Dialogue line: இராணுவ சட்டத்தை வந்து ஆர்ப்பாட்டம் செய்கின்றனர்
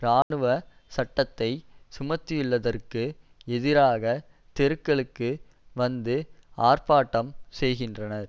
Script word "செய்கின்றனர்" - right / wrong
right